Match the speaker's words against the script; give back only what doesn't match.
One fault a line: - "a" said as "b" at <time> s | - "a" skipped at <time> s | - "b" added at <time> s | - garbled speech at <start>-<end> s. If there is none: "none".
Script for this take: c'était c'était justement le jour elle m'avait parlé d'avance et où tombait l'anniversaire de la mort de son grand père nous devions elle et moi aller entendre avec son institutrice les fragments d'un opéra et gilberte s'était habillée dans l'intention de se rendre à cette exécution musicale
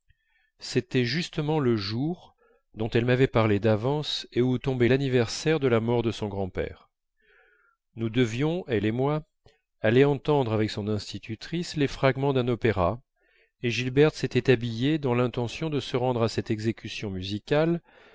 - "c'était" skipped at 1.1 s
- "dont" added at 2.7 s